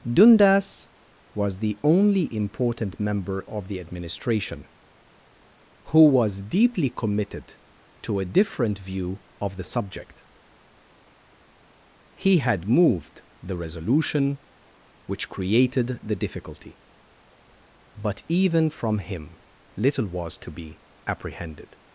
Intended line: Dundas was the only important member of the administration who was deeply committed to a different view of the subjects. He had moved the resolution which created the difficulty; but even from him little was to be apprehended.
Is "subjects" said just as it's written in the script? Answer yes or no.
no